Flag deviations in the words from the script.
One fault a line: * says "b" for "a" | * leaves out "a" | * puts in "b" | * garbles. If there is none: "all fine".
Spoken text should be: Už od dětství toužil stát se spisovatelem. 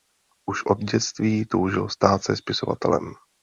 all fine